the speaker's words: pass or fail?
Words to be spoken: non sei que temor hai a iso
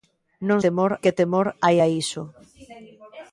fail